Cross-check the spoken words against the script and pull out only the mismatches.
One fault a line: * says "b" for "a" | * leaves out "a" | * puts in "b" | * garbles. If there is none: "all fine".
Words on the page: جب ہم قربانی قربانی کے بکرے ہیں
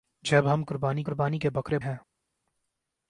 all fine